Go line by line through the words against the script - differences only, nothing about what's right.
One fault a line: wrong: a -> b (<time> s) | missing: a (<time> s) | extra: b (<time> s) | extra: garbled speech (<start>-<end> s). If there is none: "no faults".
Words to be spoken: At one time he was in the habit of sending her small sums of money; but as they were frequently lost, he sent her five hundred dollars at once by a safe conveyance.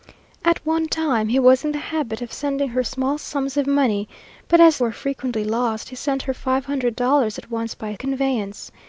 missing: they (4.8 s)
missing: safe (8.0 s)